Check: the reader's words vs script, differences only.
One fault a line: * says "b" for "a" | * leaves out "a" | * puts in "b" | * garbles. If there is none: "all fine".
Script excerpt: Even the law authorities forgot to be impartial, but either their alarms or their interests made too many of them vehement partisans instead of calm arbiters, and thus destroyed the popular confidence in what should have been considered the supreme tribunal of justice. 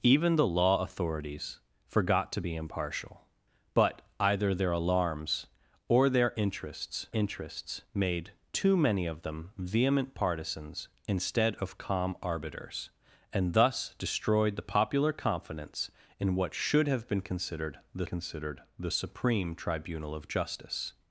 * puts in "interests"
* puts in "considered the"